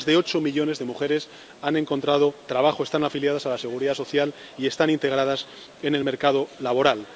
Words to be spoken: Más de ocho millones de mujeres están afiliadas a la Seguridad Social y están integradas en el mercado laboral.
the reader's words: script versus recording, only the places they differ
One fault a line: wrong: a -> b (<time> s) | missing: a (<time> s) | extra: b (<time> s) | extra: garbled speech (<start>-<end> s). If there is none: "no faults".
extra: han encontrado trabajo (1.6 s)